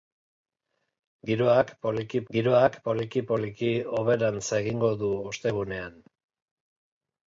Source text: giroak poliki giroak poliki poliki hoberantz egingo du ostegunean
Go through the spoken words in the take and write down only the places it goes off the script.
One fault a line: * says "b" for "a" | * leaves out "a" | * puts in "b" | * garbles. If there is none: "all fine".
all fine